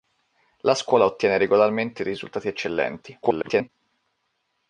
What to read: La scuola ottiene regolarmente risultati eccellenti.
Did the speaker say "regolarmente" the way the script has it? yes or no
yes